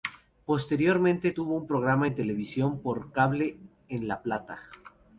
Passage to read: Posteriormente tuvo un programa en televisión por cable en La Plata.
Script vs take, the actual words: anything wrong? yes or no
no